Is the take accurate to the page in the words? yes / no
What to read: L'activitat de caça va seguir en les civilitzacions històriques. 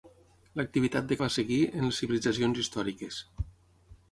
no